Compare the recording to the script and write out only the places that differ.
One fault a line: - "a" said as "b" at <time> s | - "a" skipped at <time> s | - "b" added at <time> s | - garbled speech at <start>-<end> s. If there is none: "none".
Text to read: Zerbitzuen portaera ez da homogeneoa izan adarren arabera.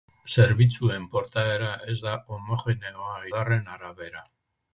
- "izan" skipped at 3.2 s